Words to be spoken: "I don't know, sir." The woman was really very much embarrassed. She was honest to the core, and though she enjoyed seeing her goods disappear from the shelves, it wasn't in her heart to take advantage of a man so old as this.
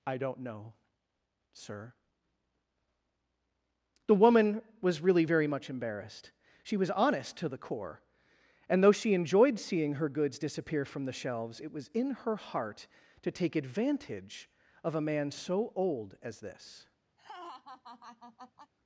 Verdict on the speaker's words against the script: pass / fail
fail